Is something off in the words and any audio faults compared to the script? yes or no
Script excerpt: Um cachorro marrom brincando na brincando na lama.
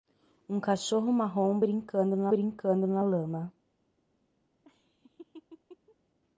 yes